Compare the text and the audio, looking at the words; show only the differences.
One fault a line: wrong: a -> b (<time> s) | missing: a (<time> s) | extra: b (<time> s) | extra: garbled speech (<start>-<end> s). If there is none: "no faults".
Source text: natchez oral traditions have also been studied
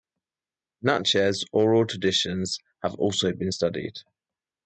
no faults